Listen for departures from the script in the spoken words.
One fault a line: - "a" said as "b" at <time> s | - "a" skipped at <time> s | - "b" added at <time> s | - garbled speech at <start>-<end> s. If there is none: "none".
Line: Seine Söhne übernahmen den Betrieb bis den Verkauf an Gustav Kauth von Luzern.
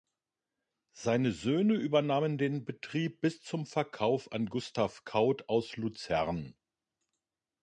- "den" said as "zum" at 3.4 s
- "von" said as "aus" at 5.5 s